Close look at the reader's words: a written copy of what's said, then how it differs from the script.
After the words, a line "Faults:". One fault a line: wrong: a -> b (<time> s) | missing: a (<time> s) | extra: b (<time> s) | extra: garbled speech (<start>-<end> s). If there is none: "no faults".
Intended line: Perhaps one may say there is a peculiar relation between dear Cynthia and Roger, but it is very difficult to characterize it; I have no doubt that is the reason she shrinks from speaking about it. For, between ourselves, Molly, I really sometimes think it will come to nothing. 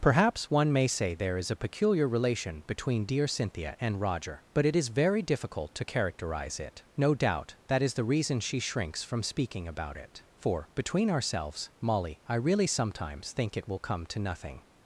Perhaps one may say there is a peculiar relation between dear Cynthia and Roger, but it is very difficult to characterize it; no doubt that is the reason she shrinks from speaking about it. For, between ourselves, Molly, I really sometimes think it will come to nothing.
Faults:
missing: I have (6.8 s)